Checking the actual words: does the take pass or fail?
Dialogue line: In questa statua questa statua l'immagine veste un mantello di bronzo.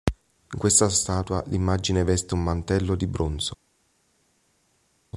fail